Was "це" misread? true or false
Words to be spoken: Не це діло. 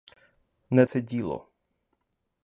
false